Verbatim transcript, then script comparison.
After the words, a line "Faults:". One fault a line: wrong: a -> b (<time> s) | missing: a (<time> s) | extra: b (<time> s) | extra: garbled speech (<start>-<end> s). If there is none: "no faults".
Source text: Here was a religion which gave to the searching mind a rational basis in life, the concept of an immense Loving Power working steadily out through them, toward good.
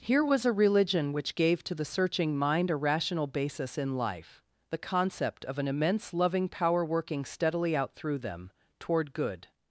Here was a religion which gave to the searching mind a rational basis in life, the concept of an immense Loving Power working steadily out through them, toward good.
Faults:
no faults